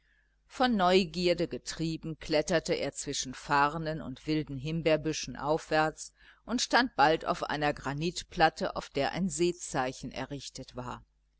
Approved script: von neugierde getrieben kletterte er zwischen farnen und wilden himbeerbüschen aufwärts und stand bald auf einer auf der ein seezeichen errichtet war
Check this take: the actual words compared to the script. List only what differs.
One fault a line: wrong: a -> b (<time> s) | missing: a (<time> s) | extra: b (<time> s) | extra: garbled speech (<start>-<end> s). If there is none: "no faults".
extra: granitplatte (7.7 s)